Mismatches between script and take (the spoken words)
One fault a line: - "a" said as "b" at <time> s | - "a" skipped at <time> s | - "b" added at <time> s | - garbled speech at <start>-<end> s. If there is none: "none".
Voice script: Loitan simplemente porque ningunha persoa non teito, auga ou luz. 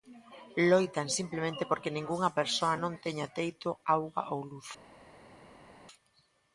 - "teña" added at 3.0 s